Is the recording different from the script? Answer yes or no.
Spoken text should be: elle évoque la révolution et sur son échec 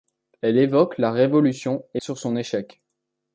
no